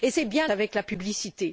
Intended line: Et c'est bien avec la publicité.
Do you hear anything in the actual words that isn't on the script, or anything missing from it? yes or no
no